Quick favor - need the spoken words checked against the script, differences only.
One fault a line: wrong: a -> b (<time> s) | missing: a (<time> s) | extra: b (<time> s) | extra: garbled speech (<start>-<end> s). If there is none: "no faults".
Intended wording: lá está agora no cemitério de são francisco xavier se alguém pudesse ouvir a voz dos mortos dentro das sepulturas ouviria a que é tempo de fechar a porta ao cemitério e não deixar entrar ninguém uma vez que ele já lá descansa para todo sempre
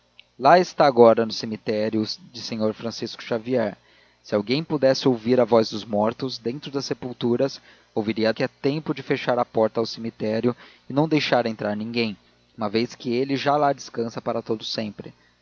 no faults